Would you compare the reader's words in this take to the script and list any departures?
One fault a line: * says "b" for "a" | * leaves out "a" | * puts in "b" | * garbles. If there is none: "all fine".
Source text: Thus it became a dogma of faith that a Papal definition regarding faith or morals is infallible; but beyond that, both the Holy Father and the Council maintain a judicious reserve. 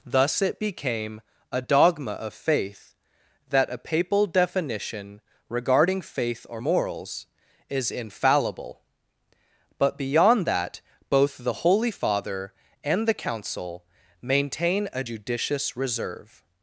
all fine